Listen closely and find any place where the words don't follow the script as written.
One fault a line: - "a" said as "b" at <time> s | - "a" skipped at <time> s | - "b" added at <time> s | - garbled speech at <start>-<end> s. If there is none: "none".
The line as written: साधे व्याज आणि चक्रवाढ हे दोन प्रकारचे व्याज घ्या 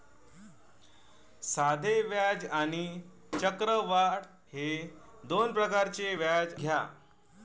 none